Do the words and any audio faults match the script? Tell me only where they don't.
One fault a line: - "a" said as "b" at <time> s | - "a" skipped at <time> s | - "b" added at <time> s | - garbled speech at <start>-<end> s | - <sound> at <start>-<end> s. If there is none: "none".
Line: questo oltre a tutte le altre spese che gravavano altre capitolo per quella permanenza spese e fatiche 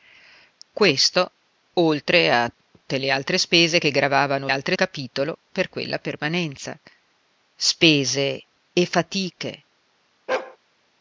- dropout at 2.6-2.7 s
- bark at 10.3-10.6 s